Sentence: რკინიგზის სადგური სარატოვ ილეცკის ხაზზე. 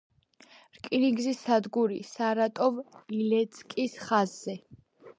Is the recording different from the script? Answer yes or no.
no